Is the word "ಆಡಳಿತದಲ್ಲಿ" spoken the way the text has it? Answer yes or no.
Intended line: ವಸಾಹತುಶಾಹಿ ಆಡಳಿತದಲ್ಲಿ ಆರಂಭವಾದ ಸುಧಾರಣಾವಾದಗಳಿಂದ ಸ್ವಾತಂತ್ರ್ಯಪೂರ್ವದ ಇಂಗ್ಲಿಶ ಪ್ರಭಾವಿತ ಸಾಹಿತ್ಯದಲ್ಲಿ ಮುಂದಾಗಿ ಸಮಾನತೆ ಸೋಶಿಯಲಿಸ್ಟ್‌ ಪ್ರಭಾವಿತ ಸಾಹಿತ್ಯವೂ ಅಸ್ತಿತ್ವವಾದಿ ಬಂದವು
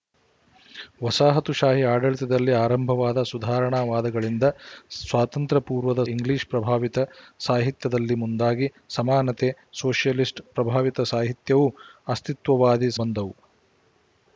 yes